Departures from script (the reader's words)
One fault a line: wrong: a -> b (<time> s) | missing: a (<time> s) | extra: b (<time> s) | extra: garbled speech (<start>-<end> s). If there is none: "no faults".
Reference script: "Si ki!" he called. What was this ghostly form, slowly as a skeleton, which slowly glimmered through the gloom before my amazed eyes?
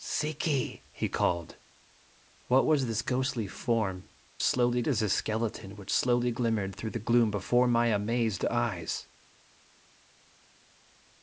no faults